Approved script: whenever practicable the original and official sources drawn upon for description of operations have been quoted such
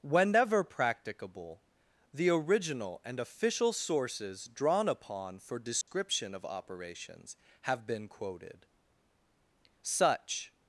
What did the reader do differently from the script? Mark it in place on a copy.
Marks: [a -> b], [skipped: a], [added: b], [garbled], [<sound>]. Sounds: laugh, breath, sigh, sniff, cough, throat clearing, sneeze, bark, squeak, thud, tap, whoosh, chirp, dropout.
whenever practicable the original and official sources drawn upon for description [dropout] of operations have been quoted such